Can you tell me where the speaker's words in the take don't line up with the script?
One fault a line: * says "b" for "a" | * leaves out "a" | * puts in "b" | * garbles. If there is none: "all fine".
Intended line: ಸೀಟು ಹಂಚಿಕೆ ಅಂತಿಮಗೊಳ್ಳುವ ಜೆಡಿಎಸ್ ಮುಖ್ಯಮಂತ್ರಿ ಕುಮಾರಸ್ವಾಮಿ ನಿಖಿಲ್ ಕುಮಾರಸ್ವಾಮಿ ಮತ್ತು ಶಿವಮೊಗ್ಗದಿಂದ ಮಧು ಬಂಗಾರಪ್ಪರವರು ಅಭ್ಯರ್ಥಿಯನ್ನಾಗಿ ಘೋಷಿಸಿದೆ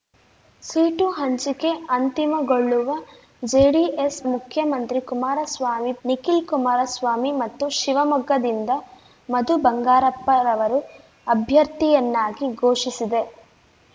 all fine